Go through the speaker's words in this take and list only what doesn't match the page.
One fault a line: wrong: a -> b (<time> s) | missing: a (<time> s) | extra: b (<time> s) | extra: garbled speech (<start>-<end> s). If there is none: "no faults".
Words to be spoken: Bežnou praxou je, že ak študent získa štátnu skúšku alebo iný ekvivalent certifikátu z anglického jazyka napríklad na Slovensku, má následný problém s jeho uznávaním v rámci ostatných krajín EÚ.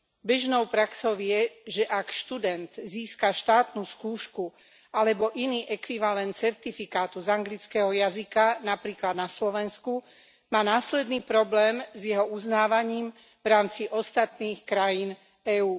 no faults